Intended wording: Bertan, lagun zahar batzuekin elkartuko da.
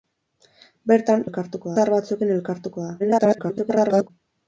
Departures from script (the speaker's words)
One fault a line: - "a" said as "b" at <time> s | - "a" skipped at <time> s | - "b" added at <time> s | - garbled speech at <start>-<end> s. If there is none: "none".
- "lagun" said as "elkartuko" at 1.2 s
- garbled speech at 3.0-4.1 s